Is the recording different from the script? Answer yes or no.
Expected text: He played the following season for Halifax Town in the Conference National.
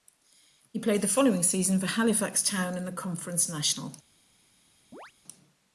no